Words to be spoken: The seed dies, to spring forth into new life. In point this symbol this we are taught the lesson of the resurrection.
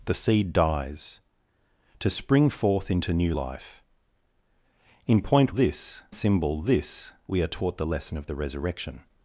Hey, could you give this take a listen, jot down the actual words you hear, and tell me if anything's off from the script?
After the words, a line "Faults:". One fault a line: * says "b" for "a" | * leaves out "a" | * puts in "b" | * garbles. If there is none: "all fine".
The seed dies, to spring forth into new life. In point this symbol this we are taught the lesson of the resurrection.
Faults:
all fine